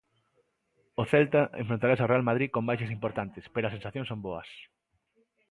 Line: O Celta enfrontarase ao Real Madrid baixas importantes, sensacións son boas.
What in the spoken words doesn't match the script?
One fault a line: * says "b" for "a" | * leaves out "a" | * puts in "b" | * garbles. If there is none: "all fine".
* puts in "con"
* puts in "pero as"